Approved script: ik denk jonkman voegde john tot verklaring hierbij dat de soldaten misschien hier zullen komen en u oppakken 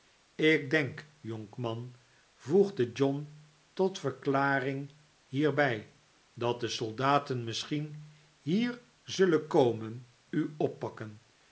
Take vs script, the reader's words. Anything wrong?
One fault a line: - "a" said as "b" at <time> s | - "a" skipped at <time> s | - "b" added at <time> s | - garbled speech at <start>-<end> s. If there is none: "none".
- "en" skipped at 10.1 s